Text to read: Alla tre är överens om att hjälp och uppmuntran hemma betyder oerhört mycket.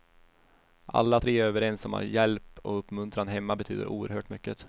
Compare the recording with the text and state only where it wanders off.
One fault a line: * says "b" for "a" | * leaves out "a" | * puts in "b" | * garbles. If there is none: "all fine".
all fine